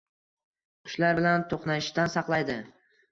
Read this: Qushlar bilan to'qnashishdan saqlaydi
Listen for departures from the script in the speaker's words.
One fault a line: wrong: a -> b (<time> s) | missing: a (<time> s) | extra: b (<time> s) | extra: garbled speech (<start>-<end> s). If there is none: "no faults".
no faults